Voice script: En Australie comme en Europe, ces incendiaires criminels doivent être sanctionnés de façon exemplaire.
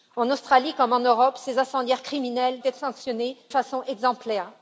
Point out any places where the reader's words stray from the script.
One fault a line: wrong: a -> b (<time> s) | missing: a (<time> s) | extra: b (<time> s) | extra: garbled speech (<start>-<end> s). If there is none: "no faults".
missing: doivent (2.6 s)
missing: de (3.4 s)